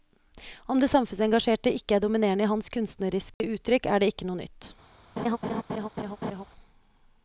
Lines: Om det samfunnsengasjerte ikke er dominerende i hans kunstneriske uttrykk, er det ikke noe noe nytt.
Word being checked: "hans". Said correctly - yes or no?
yes